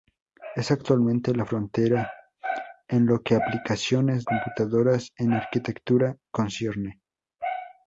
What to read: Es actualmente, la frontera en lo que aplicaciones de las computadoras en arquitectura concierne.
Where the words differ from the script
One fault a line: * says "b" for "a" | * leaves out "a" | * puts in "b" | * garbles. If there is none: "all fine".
* leaves out "de las"